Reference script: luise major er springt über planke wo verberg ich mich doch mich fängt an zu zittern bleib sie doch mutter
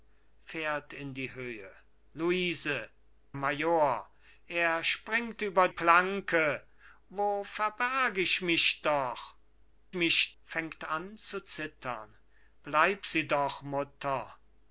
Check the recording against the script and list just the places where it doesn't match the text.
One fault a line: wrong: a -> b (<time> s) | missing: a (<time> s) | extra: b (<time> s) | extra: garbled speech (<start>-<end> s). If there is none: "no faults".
no faults